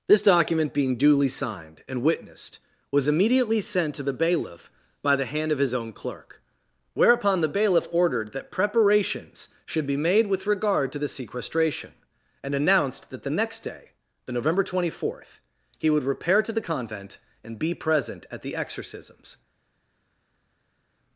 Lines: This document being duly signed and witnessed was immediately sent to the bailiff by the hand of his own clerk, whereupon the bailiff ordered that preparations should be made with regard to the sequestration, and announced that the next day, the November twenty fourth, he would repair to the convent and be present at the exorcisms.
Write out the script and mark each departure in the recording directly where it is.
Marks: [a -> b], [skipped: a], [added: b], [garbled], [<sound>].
This document being duly signed and witnessed was immediately sent to the bailiff by the hand of his own clerk, whereupon the bailiff ordered that preparations should be made with regard to the sequestration, and announced that the next day, the November twenty fourth, he would repair to the convent and be present at the exorcisms.